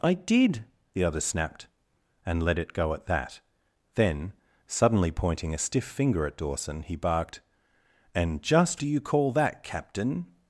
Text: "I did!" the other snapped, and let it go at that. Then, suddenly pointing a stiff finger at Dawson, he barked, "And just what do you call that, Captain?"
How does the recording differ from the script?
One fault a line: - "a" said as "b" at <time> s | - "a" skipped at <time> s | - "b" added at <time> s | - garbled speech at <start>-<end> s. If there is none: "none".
- "what" skipped at 8.8 s